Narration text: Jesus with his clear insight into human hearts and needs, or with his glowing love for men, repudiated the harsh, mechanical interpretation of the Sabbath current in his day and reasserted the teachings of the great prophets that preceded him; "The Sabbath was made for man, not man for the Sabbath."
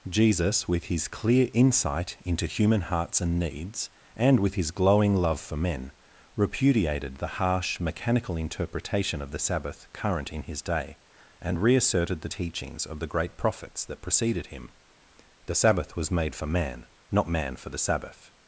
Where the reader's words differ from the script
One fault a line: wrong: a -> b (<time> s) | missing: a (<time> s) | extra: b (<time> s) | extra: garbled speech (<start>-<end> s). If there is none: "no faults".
wrong: or -> and (4.2 s)